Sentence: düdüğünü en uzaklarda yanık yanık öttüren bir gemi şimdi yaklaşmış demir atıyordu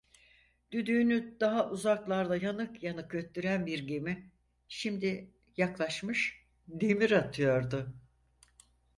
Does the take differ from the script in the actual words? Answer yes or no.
yes